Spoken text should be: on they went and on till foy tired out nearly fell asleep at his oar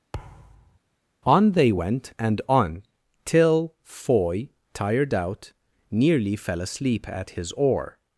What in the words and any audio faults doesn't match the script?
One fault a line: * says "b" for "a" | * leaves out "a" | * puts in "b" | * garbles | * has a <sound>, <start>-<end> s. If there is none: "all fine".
* has a thud, 0.1-0.8 s